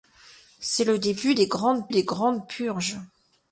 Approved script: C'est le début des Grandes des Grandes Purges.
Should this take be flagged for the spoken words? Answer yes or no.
no